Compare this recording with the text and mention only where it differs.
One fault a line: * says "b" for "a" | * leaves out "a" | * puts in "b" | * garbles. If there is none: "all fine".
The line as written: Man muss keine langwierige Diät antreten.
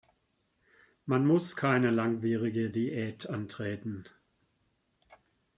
all fine